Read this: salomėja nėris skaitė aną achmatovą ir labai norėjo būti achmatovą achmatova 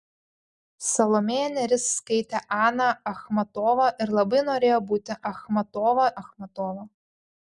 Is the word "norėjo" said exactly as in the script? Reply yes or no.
yes